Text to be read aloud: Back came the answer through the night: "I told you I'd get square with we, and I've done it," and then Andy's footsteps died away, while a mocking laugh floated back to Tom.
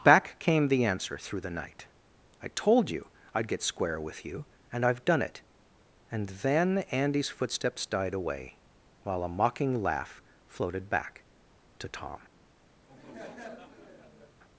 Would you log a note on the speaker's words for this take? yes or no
yes